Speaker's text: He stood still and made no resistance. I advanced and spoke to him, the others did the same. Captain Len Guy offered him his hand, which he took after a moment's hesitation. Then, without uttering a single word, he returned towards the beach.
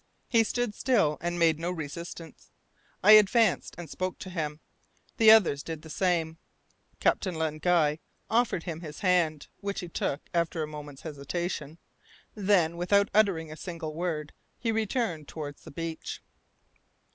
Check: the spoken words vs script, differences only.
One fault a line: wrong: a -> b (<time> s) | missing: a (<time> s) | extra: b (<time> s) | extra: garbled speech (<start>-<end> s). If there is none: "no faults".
no faults